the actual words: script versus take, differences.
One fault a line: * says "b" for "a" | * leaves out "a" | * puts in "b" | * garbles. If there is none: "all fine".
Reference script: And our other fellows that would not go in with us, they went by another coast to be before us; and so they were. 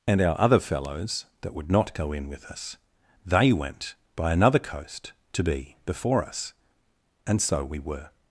* says "we" for "they"